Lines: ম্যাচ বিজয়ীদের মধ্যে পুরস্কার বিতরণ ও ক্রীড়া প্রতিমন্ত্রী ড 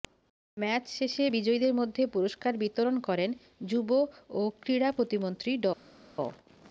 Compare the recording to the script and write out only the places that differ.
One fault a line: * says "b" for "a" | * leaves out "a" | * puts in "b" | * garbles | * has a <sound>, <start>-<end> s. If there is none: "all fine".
* puts in "শেষে"
* puts in "করেন যুব"